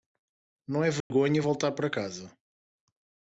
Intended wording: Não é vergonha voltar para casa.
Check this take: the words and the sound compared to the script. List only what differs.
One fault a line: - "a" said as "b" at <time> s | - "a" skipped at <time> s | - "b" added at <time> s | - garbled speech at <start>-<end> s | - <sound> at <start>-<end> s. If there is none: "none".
- dropout at 1.0-1.1 s